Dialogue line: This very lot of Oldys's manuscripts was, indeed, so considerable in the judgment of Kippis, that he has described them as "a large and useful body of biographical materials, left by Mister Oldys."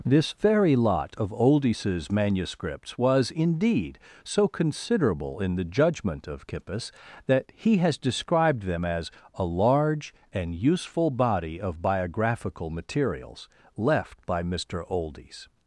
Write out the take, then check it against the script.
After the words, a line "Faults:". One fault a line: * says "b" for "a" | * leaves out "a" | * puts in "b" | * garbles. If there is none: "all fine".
This very lot of Oldys's manuscripts was, indeed, so considerable in the judgment of Kippis, that he has described them as "a large and useful body of biographical materials, left by Mister Oldys."
Faults:
all fine